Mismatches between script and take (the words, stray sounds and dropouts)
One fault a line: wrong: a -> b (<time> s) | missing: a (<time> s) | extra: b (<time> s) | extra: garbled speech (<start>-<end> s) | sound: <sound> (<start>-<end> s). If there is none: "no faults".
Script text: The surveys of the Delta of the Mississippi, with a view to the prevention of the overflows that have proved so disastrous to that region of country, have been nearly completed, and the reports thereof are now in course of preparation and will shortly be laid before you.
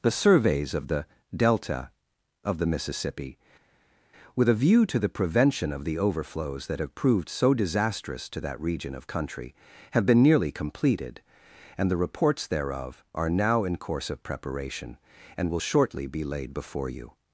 no faults